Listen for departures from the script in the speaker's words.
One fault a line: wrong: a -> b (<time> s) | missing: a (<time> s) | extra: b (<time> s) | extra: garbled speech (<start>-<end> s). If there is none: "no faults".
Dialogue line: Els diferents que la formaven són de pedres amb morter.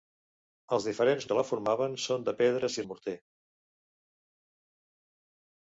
no faults